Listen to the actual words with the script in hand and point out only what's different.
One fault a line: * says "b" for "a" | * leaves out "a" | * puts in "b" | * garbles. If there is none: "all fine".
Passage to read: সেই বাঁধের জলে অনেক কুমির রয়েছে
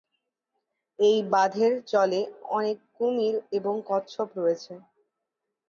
* says "এই" for "সেই"
* puts in "এবং কচ্ছপ"